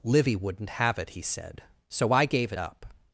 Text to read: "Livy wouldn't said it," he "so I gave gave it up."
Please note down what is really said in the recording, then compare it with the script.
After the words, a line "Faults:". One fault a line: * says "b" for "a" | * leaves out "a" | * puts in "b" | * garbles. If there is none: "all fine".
"Livy wouldn't have it," he said, "so I gave it up."
Faults:
* says "have" for "said"
* puts in "said"
* leaves out "gave"